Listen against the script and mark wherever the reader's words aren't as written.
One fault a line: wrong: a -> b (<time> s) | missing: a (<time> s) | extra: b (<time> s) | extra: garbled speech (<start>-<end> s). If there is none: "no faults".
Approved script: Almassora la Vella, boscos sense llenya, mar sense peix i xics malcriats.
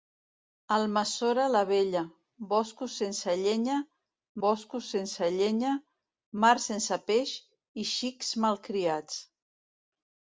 extra: boscos sense llenya (4.4 s)